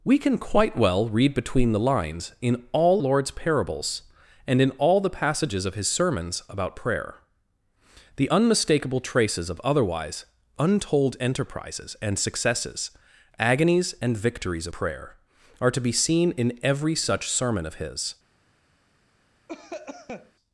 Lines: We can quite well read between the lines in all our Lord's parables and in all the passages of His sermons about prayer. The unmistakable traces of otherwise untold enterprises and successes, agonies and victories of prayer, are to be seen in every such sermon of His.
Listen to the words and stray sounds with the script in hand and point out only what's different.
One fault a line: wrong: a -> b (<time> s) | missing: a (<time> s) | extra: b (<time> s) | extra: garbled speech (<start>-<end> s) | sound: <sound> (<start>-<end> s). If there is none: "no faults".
missing: our (3.0 s)
missing: of (14.7 s)
sound: cough (19.5-20.3 s)